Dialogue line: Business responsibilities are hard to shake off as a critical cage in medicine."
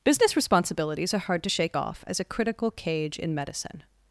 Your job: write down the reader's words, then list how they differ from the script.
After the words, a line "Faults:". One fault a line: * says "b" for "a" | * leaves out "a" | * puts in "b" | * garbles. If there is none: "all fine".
Business responsibilities are hard to shake off as a critical cage in medicine."
Faults:
all fine